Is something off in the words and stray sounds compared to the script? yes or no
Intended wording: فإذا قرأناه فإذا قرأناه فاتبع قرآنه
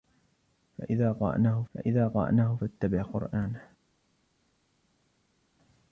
no